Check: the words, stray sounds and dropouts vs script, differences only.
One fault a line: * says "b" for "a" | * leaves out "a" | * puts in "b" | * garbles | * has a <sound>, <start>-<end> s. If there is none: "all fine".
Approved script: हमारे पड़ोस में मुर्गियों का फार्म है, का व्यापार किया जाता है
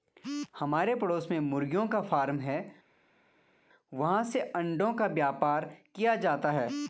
* puts in "वहाँ से अंडों"